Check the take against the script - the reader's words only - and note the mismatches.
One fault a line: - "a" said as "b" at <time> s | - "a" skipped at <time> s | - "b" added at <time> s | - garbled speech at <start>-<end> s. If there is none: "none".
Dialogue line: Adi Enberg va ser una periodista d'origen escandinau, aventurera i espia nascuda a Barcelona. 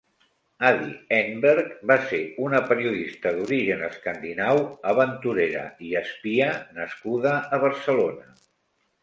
none